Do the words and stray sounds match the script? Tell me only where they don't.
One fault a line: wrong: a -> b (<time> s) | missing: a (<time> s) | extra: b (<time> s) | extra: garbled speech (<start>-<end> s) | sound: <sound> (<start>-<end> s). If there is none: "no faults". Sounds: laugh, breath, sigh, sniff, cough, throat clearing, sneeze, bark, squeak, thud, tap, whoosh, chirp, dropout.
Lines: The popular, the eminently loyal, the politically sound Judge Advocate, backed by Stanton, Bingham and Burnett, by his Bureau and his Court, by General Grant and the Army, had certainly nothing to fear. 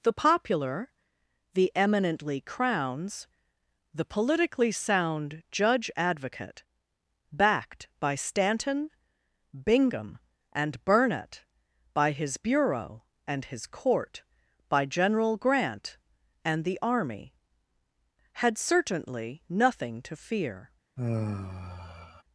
wrong: loyal -> crowns (2.4 s)
sound: sigh (21.0-22.2 s)